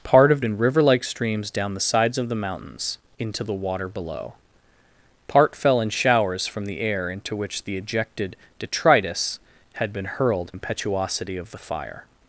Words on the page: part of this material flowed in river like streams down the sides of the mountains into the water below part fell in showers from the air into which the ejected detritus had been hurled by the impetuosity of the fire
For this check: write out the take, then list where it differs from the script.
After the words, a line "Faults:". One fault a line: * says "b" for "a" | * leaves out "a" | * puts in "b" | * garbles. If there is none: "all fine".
part of in river like streams down the sides of the mountains into the water below part fell in showers from the air into which the ejected detritus had been hurled impetuosity of the fire
Faults:
* leaves out "this material flowed"
* leaves out "by the"